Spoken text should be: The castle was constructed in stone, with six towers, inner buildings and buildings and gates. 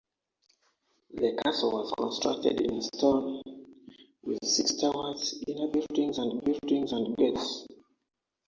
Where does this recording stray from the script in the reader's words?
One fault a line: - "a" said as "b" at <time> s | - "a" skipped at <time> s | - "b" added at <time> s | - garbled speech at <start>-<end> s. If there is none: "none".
none